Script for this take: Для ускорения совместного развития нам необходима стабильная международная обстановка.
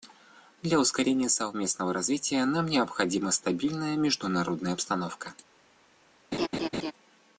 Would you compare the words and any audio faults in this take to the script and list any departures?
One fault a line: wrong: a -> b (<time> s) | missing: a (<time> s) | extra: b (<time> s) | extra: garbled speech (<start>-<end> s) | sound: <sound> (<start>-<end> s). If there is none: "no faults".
sound: laugh (6.3-6.9 s)